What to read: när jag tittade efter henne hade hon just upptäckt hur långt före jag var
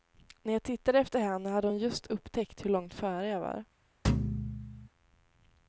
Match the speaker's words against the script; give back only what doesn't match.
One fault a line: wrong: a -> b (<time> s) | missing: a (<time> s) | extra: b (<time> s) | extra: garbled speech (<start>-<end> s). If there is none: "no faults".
no faults